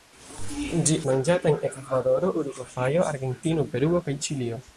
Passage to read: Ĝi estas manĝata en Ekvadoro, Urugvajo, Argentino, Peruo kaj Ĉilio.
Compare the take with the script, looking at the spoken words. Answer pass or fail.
fail